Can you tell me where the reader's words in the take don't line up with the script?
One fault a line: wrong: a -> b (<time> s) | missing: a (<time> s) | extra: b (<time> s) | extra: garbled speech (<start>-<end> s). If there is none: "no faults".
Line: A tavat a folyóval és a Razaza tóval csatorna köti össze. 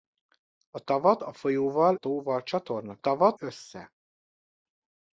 missing: és a Razaza (1.9 s)
wrong: köti -> tavat (3.0 s)